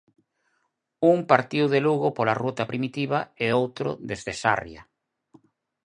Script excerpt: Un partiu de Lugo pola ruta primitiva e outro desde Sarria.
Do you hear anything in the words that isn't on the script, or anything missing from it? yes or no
no